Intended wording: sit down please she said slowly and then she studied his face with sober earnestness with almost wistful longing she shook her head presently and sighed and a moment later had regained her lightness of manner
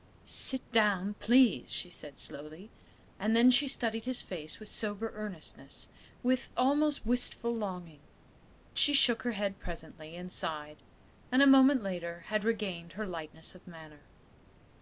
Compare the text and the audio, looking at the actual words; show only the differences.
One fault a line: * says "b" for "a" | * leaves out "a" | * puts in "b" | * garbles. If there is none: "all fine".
all fine